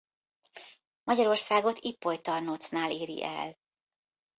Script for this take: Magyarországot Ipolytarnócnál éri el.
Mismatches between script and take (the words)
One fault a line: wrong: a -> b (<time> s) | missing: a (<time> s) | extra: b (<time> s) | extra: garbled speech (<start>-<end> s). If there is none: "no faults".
no faults